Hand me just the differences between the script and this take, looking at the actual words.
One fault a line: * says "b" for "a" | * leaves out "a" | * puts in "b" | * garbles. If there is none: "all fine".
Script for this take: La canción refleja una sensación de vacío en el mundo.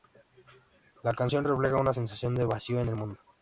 all fine